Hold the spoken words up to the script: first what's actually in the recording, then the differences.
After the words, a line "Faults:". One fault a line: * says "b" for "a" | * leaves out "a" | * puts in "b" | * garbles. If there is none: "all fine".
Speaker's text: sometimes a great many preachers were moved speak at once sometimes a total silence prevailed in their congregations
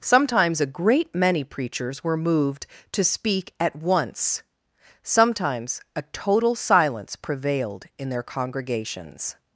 sometimes a great many preachers were moved to speak at once sometimes a total silence prevailed in their congregations
Faults:
* puts in "to"